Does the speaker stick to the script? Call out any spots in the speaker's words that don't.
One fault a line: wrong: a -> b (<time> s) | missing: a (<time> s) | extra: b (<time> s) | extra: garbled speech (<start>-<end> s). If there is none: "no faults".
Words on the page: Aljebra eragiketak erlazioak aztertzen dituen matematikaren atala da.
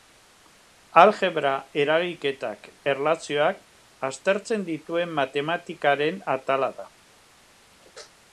no faults